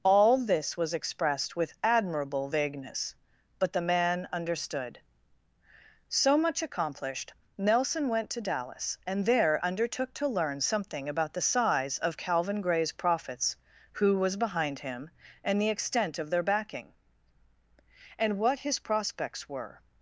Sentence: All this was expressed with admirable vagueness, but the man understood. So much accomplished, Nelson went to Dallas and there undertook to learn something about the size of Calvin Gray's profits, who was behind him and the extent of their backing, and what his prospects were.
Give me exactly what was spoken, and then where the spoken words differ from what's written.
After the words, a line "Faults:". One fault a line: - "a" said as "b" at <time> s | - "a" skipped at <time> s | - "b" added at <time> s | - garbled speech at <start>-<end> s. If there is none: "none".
All this was expressed with admirable vagueness, but the man understood. So much accomplished, Nelson went to Dallas and there undertook to learn something about the size of Calvin Gray's profits, who was behind him and the extent of their backing, and what his prospects were.
Faults:
none